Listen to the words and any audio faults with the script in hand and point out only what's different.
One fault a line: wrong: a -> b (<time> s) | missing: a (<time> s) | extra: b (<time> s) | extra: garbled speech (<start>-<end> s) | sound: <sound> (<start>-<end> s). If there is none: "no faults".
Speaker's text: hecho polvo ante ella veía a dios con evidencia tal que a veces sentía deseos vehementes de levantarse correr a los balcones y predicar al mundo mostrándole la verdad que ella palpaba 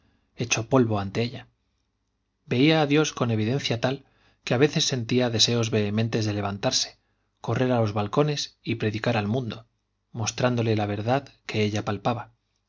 no faults